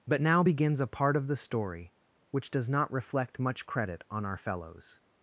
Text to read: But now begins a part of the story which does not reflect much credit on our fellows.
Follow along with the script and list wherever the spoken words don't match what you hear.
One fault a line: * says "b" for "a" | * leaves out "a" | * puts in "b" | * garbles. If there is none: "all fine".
all fine